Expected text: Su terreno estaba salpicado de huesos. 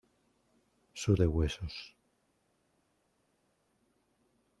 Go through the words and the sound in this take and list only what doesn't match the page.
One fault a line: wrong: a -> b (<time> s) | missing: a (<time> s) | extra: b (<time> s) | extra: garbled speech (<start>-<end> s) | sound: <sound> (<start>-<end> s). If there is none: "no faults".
missing: terreno estaba salpicado (1.2 s)